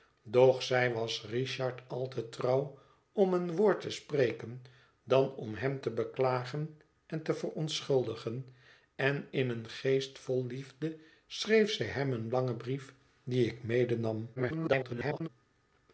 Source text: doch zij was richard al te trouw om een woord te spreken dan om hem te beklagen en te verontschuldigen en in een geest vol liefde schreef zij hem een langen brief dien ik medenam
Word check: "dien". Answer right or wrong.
right